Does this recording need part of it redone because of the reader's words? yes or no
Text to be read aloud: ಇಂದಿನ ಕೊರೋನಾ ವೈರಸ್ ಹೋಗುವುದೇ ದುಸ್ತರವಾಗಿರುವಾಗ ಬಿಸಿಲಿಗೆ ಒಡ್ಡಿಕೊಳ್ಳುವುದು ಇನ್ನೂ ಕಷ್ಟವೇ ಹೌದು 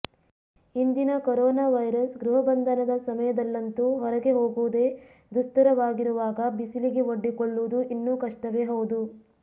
yes